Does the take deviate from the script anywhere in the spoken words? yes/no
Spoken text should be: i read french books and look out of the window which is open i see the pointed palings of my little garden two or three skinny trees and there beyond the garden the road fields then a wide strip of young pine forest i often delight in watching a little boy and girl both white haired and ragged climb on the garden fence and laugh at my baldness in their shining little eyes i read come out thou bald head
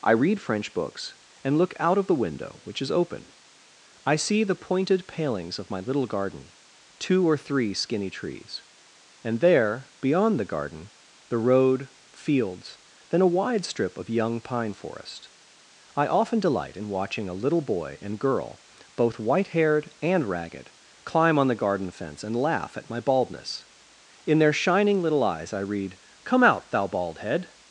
no